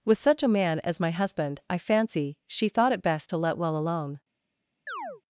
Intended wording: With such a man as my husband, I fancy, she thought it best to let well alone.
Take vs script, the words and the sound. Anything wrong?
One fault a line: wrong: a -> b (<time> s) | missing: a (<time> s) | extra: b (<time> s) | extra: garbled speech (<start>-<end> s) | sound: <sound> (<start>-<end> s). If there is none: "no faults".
sound: chirp (4.9-5.2 s)